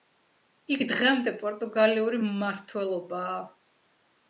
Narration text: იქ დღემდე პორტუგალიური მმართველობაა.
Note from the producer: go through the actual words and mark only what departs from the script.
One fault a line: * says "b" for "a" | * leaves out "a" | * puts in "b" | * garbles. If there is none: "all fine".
all fine